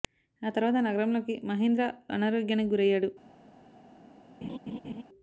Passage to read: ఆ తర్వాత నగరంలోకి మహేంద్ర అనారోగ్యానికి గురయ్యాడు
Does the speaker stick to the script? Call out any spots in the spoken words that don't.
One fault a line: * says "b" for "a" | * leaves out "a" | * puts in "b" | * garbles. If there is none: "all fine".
all fine